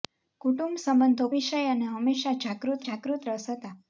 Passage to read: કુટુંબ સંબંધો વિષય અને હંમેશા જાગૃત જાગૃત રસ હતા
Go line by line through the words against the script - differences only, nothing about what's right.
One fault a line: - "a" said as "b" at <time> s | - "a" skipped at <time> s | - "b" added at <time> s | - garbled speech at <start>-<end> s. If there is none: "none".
none